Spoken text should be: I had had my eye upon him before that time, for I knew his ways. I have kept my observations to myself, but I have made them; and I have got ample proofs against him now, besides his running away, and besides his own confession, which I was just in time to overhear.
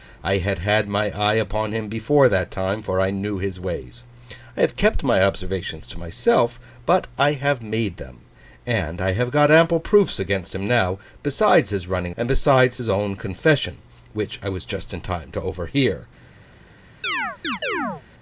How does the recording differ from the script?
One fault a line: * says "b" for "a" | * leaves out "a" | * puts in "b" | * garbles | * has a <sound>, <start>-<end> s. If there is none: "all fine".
* leaves out "away"
* has a chirp, 17.0-18.0 s